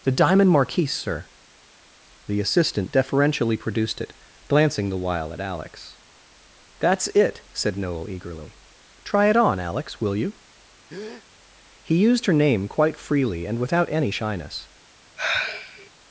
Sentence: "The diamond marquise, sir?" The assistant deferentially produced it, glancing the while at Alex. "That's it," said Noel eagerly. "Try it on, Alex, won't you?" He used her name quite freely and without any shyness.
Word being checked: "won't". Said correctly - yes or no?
no